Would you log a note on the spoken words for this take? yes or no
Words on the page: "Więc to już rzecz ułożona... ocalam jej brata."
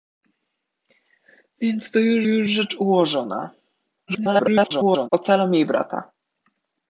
yes